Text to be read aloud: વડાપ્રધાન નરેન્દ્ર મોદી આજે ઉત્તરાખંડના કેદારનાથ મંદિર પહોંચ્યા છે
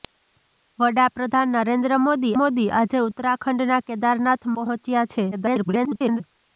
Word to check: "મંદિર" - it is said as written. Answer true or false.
false